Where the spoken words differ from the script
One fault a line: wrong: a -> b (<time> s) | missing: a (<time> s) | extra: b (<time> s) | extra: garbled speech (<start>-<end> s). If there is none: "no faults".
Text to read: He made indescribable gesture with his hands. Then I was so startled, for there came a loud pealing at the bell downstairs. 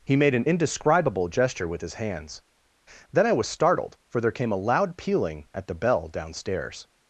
extra: an (0.3 s)
missing: so (3.5 s)